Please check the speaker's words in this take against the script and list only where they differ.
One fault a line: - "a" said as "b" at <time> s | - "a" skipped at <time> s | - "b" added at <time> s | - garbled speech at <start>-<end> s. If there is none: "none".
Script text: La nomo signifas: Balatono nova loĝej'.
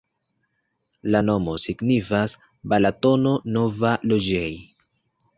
none